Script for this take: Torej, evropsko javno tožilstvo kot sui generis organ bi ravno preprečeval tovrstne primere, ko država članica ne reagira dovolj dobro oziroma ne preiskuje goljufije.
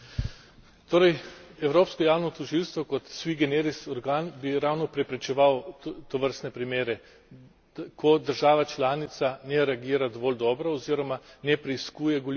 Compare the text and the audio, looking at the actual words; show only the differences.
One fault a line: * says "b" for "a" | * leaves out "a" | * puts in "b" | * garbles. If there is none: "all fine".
all fine